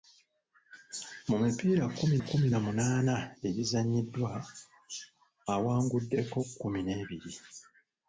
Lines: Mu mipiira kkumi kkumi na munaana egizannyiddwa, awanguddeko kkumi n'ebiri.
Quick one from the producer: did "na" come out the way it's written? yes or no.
yes